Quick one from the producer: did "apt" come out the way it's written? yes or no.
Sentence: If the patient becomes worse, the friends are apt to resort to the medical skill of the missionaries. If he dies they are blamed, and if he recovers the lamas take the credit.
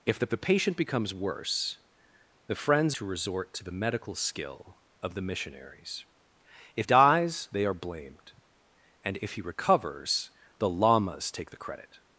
no